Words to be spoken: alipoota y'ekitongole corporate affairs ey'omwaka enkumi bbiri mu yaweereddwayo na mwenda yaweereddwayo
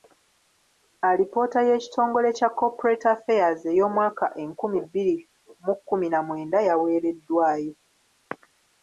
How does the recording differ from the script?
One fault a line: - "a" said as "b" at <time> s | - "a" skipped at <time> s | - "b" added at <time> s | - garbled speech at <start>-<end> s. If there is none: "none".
- "kya" added at 2.4 s
- "yaweereddwayo" said as "kkumi" at 5.8 s